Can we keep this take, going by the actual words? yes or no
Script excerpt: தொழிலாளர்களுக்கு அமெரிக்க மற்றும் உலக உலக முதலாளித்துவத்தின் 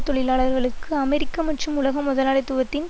no